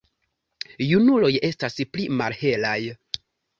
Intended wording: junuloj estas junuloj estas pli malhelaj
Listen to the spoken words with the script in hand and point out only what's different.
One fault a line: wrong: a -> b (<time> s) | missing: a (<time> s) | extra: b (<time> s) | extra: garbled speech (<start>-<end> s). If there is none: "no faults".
missing: junuloj estas (1.8 s)